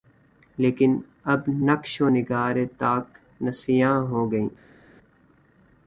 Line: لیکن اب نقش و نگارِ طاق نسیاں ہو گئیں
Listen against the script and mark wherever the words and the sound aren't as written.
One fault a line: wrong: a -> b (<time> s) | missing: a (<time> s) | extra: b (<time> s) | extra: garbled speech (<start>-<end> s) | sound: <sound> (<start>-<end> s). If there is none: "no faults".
no faults